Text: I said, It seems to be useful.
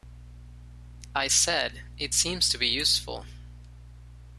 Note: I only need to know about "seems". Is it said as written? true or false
true